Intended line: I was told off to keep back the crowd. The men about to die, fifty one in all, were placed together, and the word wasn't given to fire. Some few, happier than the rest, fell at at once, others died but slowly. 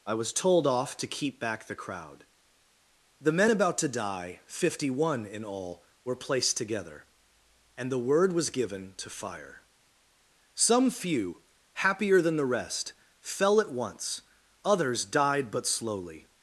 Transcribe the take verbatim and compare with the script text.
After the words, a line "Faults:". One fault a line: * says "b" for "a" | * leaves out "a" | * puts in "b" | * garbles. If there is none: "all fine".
I was told off to keep back the crowd. The men about to die, fifty one in all, were placed together, and the word was given to fire. Some few, happier than the rest, fell at once, others died but slowly.
Faults:
* says "was" for "wasn't"
* leaves out "at"